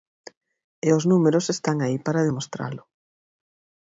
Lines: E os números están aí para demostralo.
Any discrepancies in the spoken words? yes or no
no